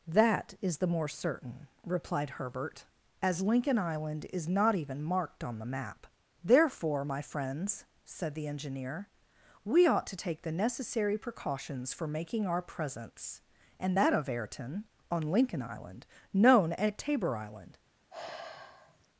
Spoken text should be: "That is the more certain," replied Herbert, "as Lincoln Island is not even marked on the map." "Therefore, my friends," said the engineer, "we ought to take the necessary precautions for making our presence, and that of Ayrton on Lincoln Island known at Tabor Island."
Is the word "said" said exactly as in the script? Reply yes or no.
yes